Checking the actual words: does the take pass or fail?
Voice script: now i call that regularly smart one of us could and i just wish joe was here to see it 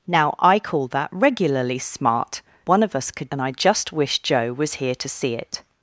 pass